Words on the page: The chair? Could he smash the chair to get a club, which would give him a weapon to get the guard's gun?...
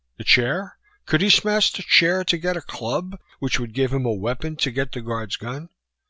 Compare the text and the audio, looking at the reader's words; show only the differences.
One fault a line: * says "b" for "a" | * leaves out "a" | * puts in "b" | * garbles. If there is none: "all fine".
all fine